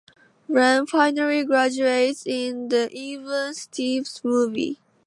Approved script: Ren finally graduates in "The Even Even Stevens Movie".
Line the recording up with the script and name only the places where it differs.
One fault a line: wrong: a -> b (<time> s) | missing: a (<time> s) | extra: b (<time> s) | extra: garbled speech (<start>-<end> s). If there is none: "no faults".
missing: Even (3.5 s)